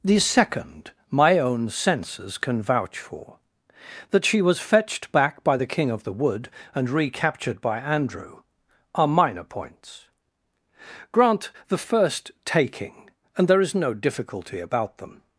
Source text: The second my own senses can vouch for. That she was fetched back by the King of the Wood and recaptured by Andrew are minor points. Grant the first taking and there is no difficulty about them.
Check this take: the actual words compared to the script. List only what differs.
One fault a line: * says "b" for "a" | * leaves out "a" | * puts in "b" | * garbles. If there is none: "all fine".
all fine